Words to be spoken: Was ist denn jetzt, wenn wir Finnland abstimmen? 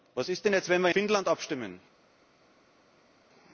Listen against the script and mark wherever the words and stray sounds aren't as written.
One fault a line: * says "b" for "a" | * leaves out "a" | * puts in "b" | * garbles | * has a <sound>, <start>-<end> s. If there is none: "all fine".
all fine